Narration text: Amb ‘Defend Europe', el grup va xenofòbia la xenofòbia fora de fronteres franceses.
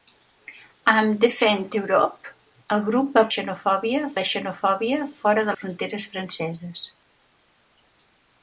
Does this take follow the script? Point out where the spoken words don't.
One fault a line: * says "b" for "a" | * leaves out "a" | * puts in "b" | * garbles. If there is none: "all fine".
all fine